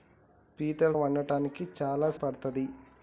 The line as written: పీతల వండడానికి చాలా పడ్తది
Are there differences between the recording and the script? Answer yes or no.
no